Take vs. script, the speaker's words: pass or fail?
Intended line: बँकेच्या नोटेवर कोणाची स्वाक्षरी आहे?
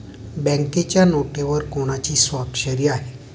pass